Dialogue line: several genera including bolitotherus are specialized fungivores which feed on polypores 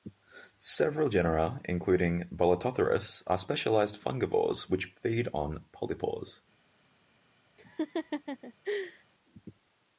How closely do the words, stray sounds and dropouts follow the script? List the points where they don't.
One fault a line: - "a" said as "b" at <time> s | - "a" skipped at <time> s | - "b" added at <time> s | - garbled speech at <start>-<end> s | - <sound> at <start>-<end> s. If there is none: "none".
- laugh at 7.6-9.1 s